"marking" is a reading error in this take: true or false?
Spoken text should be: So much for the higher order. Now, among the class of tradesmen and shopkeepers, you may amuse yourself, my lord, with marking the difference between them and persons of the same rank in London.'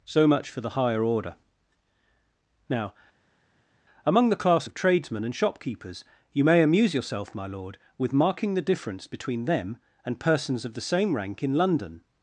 false